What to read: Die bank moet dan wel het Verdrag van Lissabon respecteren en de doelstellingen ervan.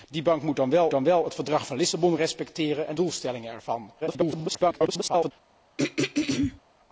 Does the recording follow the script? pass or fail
fail